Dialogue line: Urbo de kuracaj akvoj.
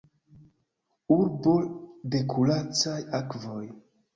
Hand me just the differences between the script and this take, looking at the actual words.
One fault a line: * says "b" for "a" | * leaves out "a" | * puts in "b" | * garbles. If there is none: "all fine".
all fine